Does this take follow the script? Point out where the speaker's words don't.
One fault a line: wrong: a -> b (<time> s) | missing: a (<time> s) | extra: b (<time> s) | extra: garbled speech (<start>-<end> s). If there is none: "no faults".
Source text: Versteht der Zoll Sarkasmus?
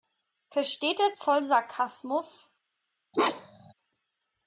no faults